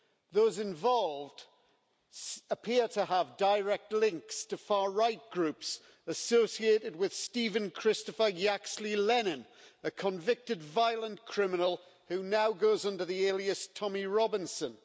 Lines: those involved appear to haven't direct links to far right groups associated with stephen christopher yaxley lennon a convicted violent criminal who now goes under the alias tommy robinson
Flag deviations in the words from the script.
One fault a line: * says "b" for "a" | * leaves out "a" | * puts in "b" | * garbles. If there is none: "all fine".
* says "have" for "haven't"